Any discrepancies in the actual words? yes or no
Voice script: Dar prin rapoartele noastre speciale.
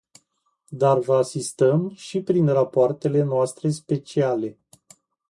yes